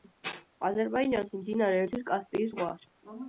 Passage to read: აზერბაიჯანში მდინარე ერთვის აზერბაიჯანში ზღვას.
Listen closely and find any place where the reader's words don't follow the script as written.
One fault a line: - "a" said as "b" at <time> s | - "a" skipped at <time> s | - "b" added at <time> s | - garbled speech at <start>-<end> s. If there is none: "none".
- "აზერბაიჯანში" said as "კასპიის" at 2.1 s